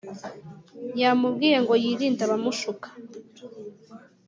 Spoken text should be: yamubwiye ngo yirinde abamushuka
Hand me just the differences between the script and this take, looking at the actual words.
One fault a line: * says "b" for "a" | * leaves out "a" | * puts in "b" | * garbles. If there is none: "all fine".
all fine